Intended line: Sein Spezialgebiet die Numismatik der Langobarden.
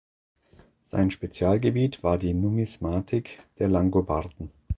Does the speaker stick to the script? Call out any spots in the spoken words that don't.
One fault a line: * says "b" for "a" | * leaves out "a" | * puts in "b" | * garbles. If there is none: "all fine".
* puts in "war"